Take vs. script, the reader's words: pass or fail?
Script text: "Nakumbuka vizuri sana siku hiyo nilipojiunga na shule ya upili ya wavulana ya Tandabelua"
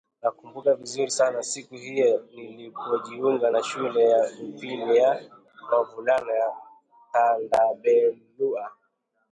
pass